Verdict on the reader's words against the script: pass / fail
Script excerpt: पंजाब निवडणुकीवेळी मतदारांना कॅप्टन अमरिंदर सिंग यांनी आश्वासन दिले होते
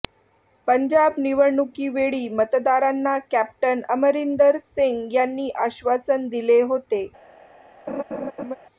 pass